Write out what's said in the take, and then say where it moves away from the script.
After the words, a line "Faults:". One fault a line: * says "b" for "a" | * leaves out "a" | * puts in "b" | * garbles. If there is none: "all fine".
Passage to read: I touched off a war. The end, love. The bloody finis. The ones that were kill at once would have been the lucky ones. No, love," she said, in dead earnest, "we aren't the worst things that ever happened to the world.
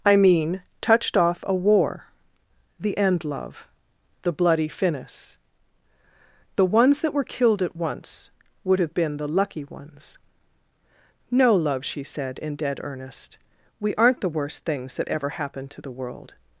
I mean, touched off a war. The end, love. The bloody finis. The ones that were killed at once would have been the lucky ones. No, love," she said, in dead earnest, "we aren't the worst things that ever happened to the world.
Faults:
* puts in "mean"
* says "killed" for "kill"